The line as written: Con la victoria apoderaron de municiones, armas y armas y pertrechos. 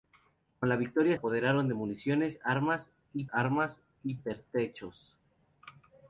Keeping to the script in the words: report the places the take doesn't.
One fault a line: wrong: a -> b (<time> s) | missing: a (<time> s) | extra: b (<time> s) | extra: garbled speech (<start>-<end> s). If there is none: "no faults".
no faults